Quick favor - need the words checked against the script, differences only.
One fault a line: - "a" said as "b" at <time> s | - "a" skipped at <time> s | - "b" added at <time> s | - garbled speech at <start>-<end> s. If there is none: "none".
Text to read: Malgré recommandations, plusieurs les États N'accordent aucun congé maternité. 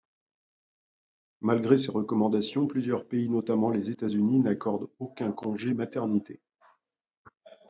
- "ces" added at 1.8 s
- "pays notamment" added at 3.1 s
- "Unis" added at 4.0 s